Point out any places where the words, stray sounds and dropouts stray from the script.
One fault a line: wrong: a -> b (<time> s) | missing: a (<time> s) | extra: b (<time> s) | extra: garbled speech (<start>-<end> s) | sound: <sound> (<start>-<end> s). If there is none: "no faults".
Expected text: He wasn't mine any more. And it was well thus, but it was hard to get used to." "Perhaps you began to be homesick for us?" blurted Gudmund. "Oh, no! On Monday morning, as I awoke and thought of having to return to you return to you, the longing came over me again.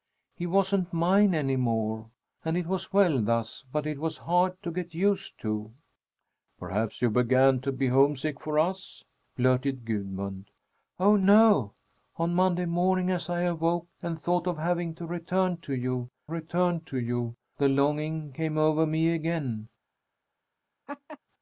sound: laugh (20.9-21.2 s)